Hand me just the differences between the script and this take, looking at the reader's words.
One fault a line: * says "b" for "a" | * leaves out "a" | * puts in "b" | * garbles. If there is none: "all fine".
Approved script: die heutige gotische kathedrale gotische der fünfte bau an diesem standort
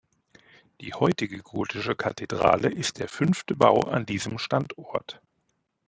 * says "ist" for "gotische"